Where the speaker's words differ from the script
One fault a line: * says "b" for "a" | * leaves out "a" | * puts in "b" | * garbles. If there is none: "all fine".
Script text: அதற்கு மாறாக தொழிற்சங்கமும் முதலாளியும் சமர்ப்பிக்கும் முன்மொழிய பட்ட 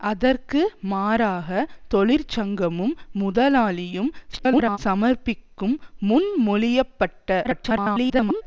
* garbles
* garbles